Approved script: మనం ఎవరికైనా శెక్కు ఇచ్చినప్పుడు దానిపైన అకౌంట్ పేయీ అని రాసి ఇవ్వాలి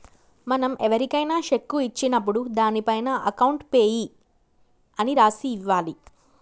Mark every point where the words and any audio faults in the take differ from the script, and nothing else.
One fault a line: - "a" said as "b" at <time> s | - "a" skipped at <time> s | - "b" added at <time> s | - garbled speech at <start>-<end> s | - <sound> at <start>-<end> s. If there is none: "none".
none